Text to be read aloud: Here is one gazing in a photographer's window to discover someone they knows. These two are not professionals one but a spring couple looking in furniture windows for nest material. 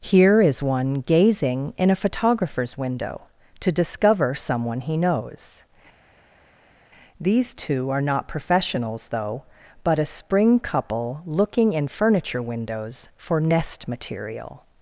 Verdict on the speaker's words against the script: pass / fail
fail